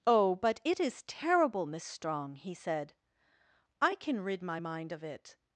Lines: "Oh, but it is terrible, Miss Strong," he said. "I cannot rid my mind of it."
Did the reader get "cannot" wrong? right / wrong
wrong